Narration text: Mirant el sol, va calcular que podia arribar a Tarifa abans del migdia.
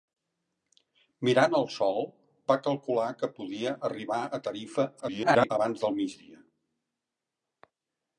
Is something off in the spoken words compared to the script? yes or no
yes